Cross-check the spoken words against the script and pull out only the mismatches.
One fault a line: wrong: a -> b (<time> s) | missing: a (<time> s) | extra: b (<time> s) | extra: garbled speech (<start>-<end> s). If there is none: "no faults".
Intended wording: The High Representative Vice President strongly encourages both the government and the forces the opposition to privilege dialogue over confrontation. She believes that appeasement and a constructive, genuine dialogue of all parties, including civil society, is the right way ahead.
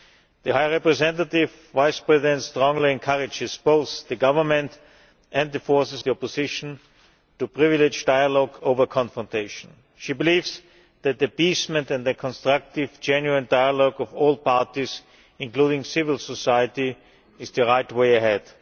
no faults